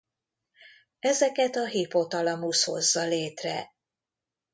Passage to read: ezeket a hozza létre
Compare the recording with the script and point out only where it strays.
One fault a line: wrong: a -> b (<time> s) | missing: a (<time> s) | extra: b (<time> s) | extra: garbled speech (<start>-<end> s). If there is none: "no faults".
extra: hipotalamusz (1.6 s)